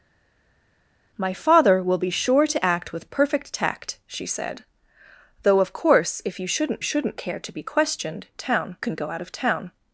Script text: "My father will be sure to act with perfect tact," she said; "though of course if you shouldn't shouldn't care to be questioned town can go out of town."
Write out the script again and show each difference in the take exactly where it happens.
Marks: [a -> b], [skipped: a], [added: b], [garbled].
"My father will be sure to act with perfect tact," she said; "though of course if you shouldn't shouldn't care to be questioned town can go out of town."